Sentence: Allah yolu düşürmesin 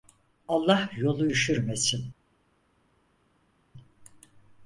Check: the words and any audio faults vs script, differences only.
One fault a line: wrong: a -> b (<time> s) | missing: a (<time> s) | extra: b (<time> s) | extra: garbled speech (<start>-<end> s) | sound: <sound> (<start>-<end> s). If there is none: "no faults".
no faults